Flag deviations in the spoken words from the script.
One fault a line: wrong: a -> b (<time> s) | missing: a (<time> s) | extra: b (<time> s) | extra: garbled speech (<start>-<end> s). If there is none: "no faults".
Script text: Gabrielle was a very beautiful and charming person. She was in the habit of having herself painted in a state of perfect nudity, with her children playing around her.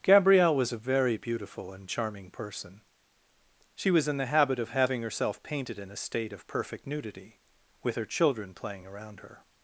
no faults